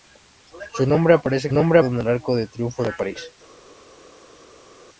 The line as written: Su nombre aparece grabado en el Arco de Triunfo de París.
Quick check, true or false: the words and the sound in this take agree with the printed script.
false